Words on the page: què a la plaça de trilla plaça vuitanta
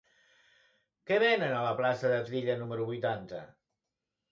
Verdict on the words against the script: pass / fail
fail